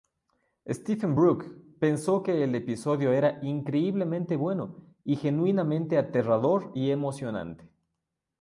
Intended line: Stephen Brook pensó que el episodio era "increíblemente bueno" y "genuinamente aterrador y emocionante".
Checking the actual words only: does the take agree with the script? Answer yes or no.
yes